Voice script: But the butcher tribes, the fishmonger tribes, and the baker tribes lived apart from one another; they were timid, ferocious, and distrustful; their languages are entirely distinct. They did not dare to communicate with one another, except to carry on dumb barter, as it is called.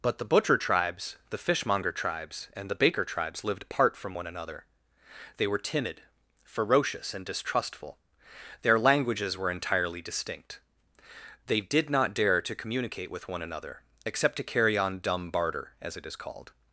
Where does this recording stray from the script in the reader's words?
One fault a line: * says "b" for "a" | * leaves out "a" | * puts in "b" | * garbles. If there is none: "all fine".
* says "were" for "are"